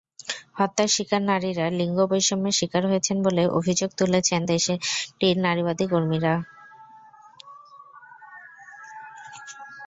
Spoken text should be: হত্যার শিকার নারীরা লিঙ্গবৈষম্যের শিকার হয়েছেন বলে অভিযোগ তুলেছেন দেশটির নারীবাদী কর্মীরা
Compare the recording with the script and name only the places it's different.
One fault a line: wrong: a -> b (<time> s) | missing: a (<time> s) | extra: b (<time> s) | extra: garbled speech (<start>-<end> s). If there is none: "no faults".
no faults